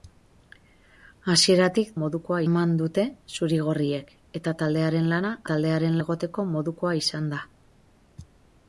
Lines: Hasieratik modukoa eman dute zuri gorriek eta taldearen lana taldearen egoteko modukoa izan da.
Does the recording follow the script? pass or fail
pass